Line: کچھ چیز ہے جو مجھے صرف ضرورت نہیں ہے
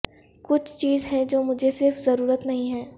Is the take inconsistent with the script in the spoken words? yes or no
no